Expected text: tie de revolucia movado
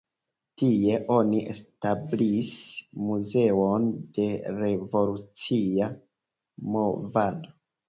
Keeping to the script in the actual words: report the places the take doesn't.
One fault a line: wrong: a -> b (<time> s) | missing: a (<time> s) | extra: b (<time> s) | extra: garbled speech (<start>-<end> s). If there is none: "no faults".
extra: oni establis muzeon (1.1 s)